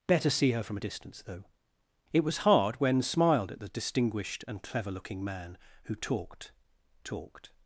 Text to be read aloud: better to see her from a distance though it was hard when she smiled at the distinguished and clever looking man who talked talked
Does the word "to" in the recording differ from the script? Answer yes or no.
yes